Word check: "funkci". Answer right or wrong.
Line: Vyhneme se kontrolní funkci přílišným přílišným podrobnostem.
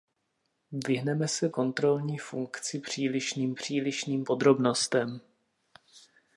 right